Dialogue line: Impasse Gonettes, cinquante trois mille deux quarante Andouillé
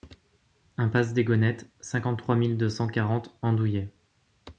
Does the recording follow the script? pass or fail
fail